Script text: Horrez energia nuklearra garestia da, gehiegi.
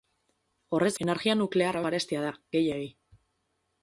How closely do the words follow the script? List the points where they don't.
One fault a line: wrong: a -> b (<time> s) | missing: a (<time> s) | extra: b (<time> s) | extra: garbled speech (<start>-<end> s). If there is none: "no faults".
no faults